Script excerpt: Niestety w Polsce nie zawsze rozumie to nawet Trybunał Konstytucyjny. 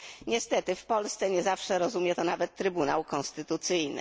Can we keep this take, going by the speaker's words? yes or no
yes